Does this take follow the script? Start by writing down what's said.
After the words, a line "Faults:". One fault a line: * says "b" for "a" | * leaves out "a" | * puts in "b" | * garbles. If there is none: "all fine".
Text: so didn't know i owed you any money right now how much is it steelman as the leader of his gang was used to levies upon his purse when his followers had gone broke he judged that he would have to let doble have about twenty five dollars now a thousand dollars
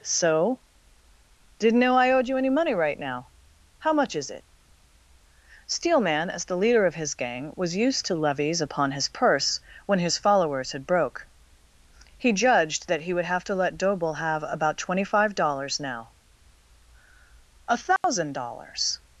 so didn't know i owed you any money right now how much is it steelman as the leader of his gang was used to levies upon his purse when his followers had broke he judged that he would have to let doble have about twenty five dollars now a thousand dollars
Faults:
* leaves out "gone"